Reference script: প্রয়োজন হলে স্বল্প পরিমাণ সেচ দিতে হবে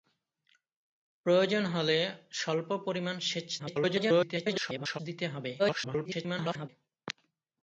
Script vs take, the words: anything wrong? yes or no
yes